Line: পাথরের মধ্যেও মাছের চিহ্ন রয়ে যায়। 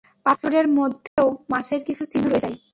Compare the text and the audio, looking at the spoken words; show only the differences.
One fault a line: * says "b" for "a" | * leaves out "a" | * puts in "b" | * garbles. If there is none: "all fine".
* puts in "কিছু"